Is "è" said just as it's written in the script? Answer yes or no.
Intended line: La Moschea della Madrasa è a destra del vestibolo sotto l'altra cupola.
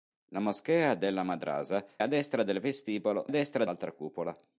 no